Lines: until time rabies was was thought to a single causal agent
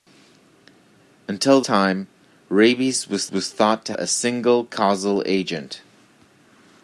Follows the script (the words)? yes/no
yes